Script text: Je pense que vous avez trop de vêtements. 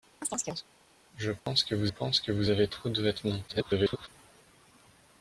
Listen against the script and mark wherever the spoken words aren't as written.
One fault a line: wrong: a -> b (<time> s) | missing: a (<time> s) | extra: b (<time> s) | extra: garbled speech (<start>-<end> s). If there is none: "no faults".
extra: pense que vous (1.9 s)
extra: garbled speech (3.5-4.1 s)